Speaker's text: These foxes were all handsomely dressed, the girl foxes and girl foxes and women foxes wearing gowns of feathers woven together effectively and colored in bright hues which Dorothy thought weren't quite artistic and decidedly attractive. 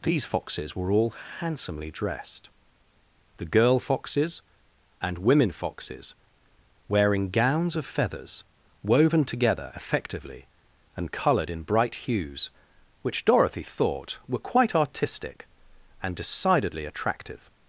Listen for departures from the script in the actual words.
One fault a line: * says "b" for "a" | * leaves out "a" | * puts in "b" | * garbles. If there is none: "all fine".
* leaves out "girl foxes and"
* says "were" for "weren't"